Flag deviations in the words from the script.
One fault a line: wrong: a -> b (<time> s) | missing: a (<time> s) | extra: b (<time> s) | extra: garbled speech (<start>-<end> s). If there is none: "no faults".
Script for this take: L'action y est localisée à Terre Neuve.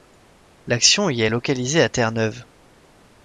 no faults